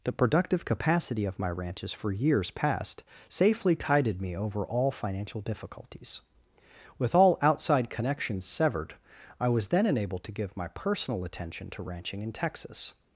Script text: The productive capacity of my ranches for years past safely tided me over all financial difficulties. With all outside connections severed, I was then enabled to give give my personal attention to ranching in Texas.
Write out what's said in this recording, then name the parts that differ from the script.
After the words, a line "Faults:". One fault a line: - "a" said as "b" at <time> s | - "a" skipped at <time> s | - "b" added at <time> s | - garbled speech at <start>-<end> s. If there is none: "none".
The productive capacity of my ranches for years past safely tided me over all financial difficulties. With all outside connections severed, I was then enabled to give my personal attention to ranching in Texas.
Faults:
- "give" skipped at 10.6 s